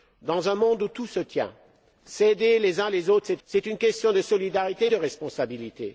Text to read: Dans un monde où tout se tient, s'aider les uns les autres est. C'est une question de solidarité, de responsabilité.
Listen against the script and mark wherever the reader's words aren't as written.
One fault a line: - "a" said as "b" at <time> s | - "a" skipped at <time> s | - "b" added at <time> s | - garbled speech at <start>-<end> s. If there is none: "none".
none